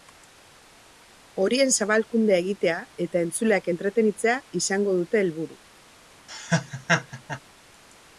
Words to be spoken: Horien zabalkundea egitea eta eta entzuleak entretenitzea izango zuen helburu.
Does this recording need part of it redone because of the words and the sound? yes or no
yes